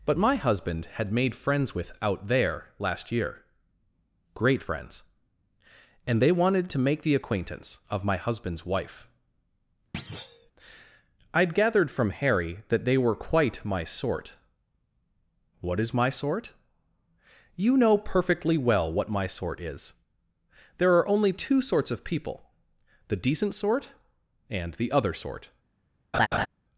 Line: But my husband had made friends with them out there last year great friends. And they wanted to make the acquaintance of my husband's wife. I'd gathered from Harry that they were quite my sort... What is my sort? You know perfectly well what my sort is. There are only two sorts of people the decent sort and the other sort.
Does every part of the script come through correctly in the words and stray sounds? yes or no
no